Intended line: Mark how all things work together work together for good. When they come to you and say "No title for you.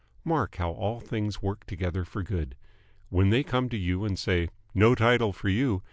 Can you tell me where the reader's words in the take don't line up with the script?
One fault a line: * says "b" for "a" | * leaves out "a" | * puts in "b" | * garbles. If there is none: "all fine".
* leaves out "work together"